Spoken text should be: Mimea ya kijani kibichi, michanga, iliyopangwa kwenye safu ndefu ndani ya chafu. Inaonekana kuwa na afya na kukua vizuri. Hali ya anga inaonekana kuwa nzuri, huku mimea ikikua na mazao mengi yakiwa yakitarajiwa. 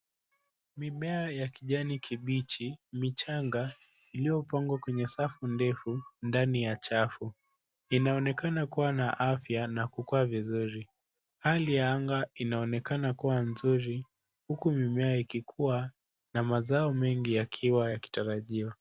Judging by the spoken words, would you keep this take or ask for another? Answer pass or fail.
pass